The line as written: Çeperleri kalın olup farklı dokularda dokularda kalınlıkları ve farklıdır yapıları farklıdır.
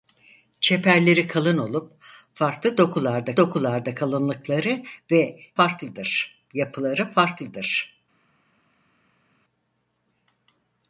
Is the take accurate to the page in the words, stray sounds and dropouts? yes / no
yes